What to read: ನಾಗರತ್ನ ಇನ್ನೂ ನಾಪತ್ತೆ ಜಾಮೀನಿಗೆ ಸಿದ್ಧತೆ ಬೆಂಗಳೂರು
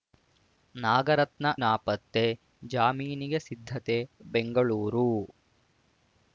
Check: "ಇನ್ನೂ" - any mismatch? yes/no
yes